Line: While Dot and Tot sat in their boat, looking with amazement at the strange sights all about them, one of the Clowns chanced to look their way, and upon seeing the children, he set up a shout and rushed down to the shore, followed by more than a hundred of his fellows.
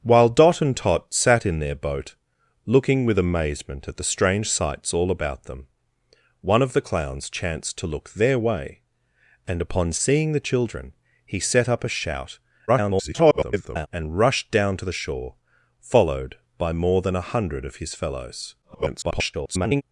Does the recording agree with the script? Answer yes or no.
no